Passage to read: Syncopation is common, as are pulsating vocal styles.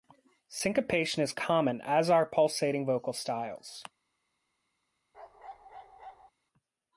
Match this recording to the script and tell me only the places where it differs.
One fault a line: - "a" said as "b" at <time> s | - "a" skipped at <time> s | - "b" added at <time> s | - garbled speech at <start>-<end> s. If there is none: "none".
none